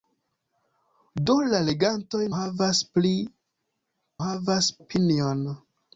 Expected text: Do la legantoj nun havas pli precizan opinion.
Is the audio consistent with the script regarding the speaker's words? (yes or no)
no